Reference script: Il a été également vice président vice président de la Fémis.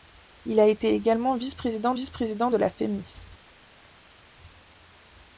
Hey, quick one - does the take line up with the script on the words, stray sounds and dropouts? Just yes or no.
yes